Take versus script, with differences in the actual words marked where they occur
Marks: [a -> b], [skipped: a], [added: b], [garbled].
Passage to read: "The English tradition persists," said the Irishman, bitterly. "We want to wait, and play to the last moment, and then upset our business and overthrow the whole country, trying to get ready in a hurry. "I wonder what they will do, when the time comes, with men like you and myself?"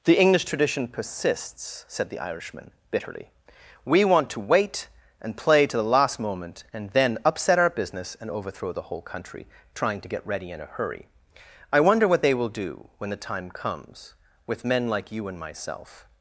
"The English tradition persists," said the Irishman, bitterly. "We want to wait, and play to the last moment, and then upset our business and overthrow the whole country, trying to get ready in a hurry. "I wonder what they will do, when the time comes, with men like you and myself?"